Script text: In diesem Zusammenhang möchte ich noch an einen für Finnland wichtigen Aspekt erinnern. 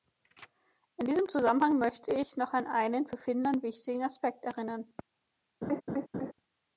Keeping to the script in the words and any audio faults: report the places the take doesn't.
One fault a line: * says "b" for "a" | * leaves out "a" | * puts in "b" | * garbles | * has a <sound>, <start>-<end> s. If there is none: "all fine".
* has a laugh, 5.6-6.3 s